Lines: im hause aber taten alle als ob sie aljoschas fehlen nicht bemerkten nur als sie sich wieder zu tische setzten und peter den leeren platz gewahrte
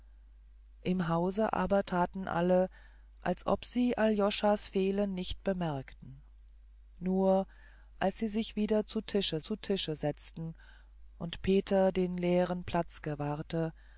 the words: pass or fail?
fail